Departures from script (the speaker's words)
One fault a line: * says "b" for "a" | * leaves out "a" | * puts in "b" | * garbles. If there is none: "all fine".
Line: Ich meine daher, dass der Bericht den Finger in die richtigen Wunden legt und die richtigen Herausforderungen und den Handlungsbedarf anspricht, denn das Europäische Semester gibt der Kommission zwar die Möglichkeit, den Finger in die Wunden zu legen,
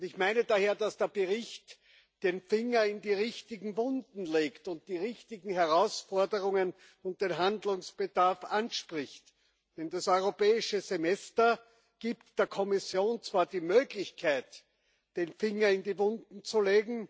all fine